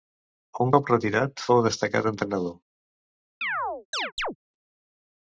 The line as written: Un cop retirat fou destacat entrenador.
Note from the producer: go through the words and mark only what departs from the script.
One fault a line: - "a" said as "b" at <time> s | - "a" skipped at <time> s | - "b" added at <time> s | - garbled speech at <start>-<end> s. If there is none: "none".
none